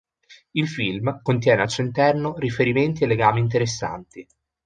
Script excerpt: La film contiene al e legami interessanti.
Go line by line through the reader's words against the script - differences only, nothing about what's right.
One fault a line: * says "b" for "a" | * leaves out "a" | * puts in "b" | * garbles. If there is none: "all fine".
* says "Il" for "La"
* puts in "suo interno riferimenti"